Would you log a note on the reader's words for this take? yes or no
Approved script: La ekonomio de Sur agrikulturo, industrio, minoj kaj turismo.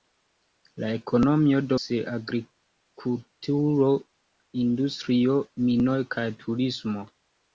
no